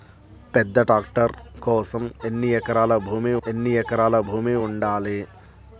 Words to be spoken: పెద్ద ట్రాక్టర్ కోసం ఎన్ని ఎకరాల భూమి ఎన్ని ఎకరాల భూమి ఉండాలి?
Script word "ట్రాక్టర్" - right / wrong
right